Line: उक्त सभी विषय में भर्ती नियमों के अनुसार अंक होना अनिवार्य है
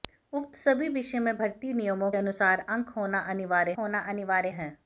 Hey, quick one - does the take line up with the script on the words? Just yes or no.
no